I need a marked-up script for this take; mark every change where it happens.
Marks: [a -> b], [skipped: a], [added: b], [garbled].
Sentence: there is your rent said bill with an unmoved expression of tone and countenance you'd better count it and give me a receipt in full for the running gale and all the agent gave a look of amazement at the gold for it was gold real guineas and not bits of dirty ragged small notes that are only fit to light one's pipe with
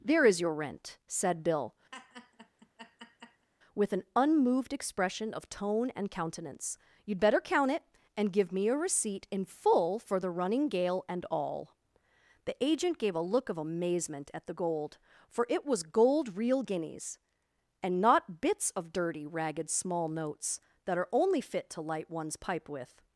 there is your rent said bill with an unmoved expression of tone and countenance you'd better count it and give me a receipt in full for the running gale and all the agent gave a look of amazement at the gold for it was gold real guineas and not bits of dirty ragged small notes that are only fit to light one's pipe with